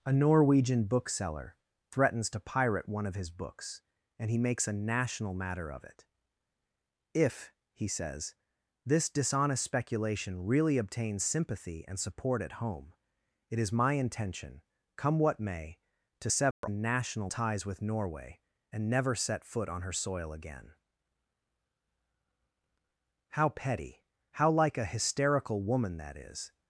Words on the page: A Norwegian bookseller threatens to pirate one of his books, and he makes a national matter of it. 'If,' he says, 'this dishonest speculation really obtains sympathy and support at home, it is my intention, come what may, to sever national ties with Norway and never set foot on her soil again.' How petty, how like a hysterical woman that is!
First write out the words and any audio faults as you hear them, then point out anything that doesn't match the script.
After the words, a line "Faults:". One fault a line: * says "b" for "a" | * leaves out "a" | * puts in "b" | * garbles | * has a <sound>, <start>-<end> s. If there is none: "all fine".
A Norwegian bookseller threatens to pirate one of his books, and he makes a national matter of it. 'If,' he says, 'this dishonest speculation really obtains sympathy and support at home, it is my intention, come what may, to sever national ties with Norway and never set foot on her soil again.' How petty, how like a hysterical woman that is!
Faults:
* has a dropout, 16.5-16.6 s